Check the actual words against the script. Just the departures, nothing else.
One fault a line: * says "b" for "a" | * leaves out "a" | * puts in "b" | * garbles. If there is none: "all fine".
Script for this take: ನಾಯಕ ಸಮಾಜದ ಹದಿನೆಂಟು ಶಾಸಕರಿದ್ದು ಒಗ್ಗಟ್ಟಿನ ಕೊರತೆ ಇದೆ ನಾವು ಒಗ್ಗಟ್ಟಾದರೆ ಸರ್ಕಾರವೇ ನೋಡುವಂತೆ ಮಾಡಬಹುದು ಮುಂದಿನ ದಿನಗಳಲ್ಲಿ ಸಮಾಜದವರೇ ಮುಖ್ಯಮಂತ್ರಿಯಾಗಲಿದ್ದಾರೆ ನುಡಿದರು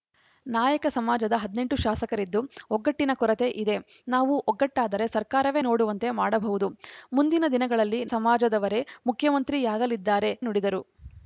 all fine